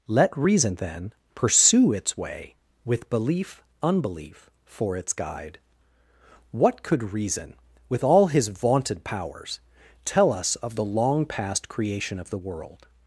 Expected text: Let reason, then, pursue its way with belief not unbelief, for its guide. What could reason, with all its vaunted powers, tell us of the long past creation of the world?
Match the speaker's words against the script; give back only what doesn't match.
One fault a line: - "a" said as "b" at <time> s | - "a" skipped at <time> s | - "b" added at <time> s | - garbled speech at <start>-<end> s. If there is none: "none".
- "not" skipped at 3.6 s
- "its" said as "his" at 8.3 s